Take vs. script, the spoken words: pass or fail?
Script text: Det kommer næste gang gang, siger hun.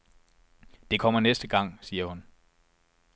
fail